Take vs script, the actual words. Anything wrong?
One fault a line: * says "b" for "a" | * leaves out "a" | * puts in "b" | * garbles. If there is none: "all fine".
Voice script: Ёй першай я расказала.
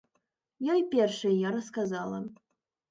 all fine